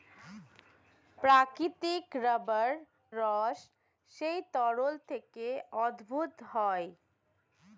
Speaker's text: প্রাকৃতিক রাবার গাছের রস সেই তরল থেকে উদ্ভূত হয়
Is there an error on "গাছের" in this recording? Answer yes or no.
yes